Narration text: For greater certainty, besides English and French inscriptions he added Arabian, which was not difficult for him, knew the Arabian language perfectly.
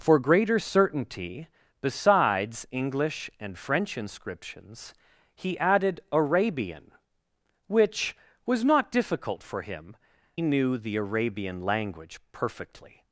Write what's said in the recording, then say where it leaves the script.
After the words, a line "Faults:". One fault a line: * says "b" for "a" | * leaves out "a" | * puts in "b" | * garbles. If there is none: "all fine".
For greater certainty, besides English and French inscriptions he added Arabian, which was not difficult for him, knew the Arabian language perfectly.
Faults:
all fine